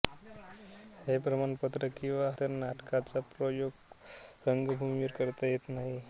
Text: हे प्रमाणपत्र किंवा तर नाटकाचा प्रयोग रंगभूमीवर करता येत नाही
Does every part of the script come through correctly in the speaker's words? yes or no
yes